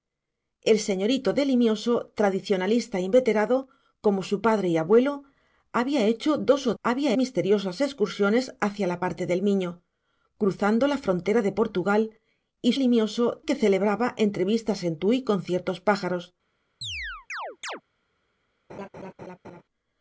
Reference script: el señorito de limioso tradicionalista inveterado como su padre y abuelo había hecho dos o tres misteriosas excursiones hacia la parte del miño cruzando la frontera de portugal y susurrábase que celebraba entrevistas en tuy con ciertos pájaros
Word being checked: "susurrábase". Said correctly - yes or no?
no